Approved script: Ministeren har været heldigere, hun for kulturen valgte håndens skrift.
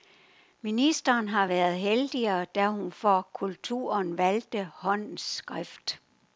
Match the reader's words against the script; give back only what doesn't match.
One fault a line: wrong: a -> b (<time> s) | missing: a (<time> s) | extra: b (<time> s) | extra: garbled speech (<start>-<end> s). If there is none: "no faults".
extra: da (2.5 s)